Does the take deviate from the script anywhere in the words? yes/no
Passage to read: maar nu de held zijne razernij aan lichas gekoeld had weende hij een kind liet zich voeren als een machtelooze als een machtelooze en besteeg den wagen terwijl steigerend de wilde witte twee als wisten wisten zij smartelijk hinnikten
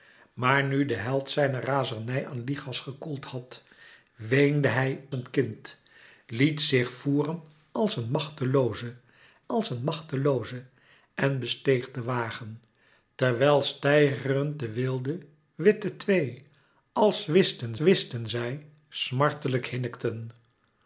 no